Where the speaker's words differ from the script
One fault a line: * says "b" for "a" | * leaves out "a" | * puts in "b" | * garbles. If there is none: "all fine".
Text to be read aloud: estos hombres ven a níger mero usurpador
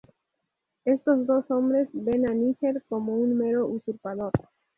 * puts in "dos"
* puts in "como un"